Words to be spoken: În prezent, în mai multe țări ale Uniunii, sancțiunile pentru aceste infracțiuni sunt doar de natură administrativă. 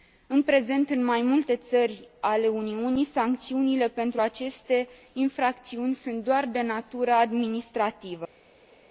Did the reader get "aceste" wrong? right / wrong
right